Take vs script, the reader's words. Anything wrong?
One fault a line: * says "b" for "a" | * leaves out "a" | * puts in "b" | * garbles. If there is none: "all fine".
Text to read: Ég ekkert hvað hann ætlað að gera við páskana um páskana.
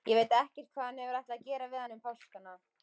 * puts in "veit"
* puts in "hefur"
* says "hann" for "páskana"